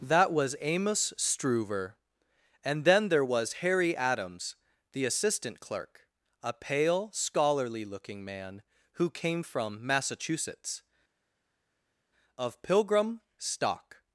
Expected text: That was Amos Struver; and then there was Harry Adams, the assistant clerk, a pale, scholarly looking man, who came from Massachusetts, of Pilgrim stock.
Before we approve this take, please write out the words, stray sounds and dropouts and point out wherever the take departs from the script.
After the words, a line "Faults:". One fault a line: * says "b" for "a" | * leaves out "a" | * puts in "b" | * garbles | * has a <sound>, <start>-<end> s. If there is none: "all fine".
That was Amos Struver; and then there was Harry Adams, the assistant clerk, a pale, scholarly looking man, who came from Massachusetts, of Pilgrim stock.
Faults:
all fine